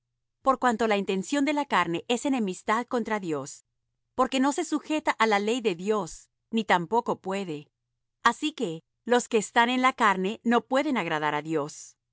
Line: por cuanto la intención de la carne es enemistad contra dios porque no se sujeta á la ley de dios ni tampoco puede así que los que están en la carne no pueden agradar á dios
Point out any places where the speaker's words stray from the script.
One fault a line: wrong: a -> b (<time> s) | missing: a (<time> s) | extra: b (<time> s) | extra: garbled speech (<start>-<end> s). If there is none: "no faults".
no faults